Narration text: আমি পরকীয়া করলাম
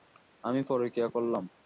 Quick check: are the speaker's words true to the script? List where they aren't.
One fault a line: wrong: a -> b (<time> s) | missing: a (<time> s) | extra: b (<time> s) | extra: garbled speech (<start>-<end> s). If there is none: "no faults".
no faults